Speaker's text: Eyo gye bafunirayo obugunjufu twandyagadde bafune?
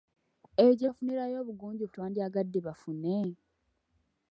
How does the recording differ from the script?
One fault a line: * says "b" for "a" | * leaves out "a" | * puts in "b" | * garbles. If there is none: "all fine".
all fine